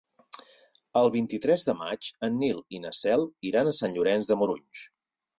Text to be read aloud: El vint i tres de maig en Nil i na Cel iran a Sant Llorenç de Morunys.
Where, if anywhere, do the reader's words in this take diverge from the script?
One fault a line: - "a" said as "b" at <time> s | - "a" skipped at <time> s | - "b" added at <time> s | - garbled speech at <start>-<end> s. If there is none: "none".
none